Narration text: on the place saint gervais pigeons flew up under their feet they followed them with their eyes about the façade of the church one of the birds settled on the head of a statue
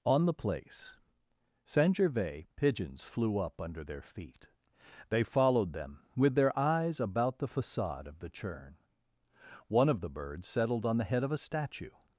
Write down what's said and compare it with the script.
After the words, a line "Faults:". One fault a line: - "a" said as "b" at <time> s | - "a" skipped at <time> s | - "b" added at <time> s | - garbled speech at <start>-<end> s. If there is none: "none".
on the place saint gervais pigeons flew up under their feet they followed them with their eyes about the façade of the churn one of the birds settled on the head of a statue
Faults:
- "church" said as "churn" at 8.3 s